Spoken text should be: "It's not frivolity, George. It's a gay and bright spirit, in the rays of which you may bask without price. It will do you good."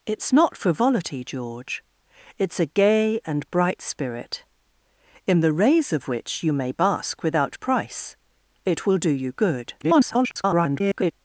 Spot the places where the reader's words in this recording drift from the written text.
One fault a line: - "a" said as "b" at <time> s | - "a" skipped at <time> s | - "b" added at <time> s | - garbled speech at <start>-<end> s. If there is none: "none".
- garbled speech at 9.8-11.1 s